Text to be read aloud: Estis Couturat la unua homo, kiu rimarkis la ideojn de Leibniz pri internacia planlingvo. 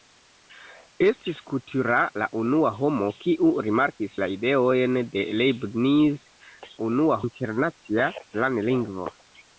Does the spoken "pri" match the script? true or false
false